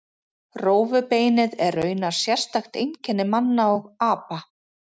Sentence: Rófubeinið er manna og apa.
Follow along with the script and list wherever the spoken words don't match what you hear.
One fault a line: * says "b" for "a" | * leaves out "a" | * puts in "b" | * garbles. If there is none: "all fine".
* puts in "raunar sérstakt einkenni"